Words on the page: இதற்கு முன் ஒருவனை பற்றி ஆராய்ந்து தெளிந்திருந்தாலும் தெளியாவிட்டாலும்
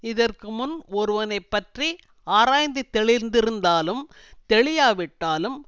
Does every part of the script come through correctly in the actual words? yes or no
yes